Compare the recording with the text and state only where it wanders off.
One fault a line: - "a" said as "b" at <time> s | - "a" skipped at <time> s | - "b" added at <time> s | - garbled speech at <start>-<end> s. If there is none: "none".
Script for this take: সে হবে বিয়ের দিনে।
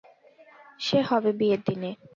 none